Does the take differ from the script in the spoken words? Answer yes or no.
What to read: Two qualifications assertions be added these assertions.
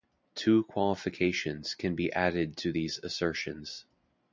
yes